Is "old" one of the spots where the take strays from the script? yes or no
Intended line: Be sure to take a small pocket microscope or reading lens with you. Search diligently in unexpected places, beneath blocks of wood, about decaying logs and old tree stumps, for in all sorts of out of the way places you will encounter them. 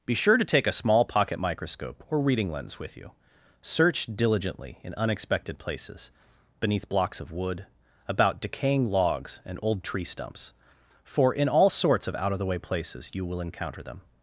no